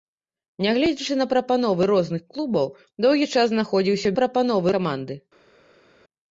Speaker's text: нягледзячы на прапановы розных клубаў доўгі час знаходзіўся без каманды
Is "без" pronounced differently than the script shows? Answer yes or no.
yes